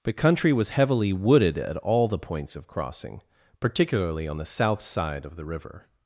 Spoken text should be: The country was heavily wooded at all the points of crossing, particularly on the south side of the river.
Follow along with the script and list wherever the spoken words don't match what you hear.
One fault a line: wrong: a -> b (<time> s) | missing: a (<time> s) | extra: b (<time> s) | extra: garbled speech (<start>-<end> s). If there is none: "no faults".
no faults